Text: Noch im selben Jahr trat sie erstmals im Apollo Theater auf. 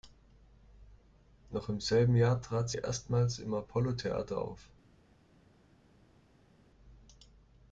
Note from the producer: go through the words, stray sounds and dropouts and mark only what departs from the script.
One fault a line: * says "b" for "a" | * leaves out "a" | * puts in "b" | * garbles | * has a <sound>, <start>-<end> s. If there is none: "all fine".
* leaves out "sie"